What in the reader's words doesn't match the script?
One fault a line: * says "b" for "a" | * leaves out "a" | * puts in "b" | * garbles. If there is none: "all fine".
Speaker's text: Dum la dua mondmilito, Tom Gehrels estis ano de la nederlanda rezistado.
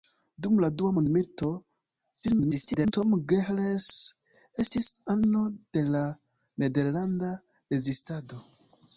* garbles